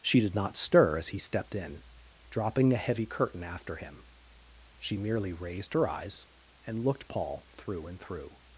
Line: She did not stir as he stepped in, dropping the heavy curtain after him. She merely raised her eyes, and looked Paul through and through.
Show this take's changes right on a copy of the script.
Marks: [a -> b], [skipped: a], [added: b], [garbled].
She did not stir as he stepped in, dropping the heavy curtain after him. She merely raised her eyes, and looked Paul through and through.